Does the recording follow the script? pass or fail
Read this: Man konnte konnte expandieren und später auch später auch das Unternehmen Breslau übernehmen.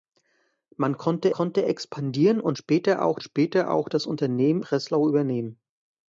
pass